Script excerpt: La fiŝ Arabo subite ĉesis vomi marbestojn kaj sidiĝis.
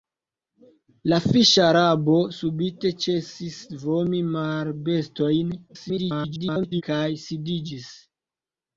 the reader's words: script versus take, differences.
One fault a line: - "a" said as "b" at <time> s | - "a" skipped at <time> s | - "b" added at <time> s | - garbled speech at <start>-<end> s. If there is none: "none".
- garbled speech at 5.7-6.8 s